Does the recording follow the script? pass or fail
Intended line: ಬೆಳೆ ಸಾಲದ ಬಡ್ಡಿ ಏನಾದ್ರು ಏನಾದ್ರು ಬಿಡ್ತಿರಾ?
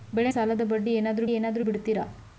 pass